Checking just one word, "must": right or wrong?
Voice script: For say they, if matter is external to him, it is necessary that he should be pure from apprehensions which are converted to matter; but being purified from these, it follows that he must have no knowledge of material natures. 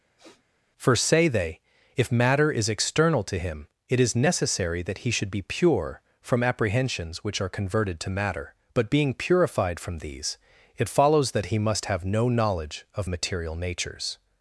right